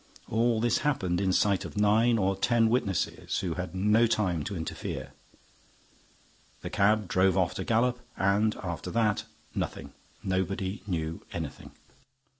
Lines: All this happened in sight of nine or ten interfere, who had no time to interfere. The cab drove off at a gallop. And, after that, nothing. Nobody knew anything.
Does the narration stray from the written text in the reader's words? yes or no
yes